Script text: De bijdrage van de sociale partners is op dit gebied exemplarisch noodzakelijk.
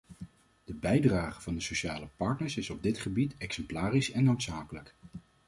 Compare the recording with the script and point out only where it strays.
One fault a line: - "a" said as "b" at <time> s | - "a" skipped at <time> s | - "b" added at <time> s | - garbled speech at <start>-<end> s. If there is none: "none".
- "en" added at 4.1 s